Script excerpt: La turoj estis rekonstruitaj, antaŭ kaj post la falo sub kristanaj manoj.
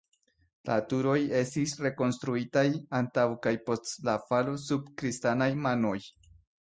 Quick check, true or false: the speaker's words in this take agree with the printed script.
true